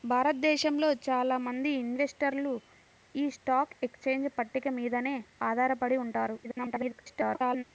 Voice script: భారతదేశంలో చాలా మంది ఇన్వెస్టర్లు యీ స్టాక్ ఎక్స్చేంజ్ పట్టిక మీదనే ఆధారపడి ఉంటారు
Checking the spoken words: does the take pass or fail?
fail